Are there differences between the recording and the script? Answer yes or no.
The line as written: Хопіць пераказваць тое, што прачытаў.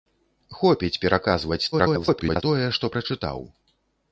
yes